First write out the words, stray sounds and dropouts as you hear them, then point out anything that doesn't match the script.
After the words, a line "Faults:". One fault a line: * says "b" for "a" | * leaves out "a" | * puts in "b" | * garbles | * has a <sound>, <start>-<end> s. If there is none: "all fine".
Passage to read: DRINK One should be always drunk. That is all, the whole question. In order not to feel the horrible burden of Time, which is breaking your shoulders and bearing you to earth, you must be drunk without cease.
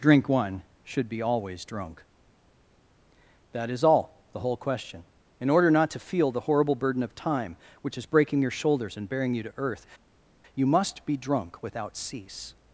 DRINK One should be always drunk. That is all, the whole question. In order not to feel the horrible burden of Time, which is breaking your shoulders and bearing you to earth, you must be drunk without cease.
Faults:
all fine